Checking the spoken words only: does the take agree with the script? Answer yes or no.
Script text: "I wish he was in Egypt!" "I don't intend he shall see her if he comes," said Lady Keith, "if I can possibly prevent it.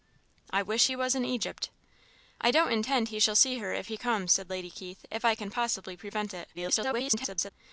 no